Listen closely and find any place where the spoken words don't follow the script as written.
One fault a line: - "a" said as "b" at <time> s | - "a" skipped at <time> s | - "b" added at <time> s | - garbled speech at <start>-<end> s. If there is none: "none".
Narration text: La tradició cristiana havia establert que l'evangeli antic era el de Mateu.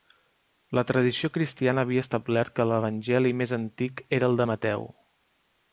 - "més" added at 3.4 s